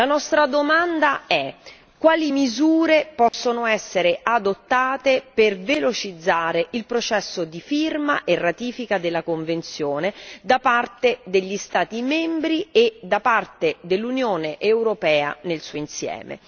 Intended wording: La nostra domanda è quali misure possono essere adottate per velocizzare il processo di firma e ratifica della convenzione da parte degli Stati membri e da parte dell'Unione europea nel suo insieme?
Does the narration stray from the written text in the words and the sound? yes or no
yes